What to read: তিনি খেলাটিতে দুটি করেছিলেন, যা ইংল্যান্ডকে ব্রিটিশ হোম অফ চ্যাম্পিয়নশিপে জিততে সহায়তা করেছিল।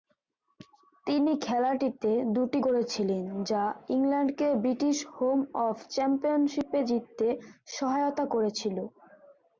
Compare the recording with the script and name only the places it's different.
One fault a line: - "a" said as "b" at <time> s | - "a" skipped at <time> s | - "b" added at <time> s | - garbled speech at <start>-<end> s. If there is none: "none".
none